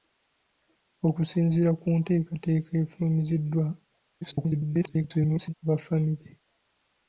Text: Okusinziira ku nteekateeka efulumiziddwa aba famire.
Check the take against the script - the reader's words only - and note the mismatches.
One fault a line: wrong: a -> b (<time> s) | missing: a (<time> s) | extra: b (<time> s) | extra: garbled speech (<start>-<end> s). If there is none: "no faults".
extra: garbled speech (4.2-5.5 s)